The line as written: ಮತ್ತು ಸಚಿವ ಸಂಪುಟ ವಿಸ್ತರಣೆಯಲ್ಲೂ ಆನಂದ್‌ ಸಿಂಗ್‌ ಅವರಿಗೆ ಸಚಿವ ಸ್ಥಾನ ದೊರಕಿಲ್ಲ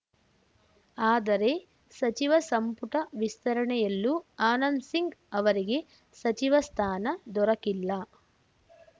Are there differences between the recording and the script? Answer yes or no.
yes